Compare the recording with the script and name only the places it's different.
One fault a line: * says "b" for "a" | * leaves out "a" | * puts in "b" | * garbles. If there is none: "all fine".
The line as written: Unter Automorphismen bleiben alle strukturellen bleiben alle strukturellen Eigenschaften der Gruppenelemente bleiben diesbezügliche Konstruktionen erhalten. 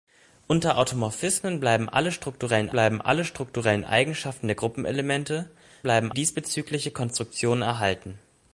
all fine